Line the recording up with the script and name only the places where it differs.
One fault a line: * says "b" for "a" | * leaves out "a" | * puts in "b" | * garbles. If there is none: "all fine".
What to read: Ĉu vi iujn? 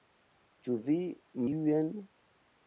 all fine